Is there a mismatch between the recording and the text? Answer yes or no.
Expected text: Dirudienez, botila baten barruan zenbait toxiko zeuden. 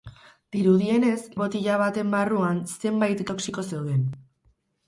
no